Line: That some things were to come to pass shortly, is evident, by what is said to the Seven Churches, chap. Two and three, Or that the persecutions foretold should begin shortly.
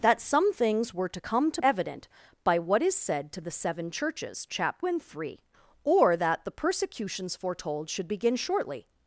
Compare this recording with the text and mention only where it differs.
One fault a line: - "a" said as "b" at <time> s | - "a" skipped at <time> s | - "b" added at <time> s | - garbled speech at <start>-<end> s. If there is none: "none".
- "pass shortly is" skipped at 1.6 s
- "Two" skipped at 4.8 s